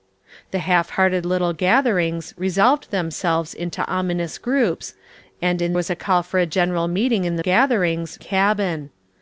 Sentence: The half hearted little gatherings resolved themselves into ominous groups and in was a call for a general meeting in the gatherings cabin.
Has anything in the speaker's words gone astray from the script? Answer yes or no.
no